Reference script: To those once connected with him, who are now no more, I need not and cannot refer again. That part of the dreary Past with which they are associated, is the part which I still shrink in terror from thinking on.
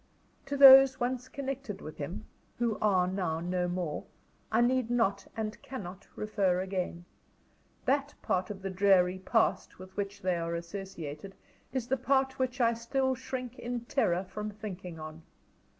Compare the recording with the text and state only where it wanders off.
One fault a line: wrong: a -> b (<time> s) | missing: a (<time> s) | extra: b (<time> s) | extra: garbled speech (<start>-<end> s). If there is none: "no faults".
no faults